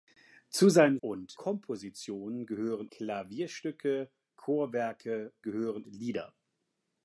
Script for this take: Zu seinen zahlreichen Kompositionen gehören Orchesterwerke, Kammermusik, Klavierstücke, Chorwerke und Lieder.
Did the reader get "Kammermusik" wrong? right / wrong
wrong